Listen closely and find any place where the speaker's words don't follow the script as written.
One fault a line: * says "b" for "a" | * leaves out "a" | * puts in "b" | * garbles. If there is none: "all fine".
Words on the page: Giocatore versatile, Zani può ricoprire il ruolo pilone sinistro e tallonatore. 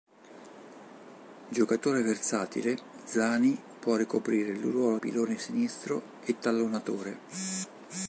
all fine